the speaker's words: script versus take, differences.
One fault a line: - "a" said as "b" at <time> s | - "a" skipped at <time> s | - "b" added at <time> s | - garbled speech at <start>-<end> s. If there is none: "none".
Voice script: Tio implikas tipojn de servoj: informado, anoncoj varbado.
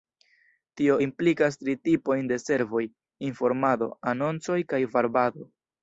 - "tri" added at 1.6 s
- "kaj" added at 4.7 s